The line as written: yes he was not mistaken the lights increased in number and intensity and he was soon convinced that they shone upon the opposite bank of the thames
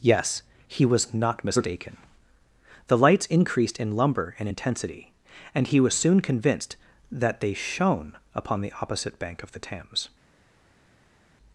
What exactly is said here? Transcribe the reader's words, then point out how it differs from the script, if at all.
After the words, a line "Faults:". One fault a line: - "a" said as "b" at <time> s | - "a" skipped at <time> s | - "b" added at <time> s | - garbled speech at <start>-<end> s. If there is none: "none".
yes he was not mistaken the lights increased in lumber and intensity and he was soon convinced that they shone upon the opposite bank of the thames
Faults:
- "number" said as "lumber" at 4.0 s